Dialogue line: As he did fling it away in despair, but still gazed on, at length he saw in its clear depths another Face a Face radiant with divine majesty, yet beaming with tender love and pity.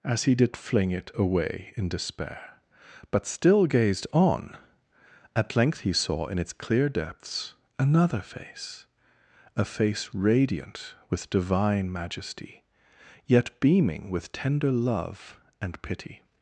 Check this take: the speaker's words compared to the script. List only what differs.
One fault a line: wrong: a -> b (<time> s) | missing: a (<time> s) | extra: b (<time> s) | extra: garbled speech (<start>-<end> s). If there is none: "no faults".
no faults